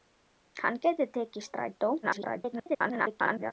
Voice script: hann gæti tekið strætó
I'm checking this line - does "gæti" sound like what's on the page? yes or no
yes